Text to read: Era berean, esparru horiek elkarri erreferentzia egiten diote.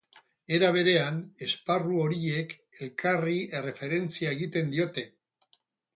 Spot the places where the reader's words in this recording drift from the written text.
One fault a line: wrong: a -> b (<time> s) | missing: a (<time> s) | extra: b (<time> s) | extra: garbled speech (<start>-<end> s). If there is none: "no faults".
no faults